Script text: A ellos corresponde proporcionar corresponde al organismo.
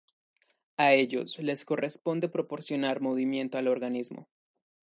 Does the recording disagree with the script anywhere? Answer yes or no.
yes